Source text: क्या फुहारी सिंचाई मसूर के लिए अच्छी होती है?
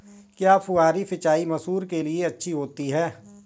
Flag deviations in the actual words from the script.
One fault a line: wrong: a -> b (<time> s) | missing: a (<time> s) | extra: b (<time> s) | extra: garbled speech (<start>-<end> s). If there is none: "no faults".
no faults